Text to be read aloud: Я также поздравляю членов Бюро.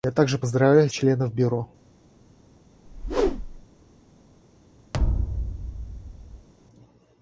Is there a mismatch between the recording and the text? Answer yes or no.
no